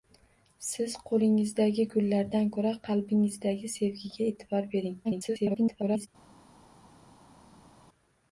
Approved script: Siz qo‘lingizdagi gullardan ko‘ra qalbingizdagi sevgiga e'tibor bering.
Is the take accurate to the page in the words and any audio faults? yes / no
no